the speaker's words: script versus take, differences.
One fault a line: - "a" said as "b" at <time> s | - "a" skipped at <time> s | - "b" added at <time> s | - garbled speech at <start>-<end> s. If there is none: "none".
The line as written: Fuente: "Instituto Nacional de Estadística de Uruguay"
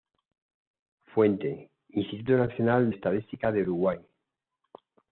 - "de" skipped at 2.9 s